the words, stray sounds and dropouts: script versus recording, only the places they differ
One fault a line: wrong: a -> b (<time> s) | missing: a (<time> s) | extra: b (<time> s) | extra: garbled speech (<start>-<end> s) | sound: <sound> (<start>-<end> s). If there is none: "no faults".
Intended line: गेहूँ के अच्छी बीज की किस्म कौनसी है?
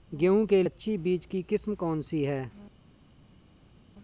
no faults